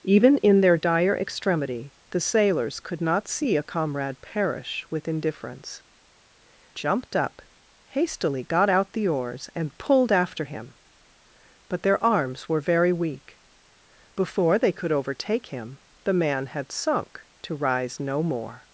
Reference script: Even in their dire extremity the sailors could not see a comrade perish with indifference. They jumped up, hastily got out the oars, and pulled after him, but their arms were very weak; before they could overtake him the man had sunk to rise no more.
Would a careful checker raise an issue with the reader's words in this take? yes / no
yes